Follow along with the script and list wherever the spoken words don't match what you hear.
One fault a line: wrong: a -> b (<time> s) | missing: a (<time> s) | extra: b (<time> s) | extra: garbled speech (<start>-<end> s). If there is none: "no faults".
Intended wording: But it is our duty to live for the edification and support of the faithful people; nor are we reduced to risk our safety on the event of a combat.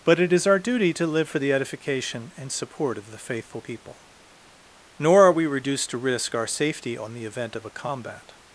no faults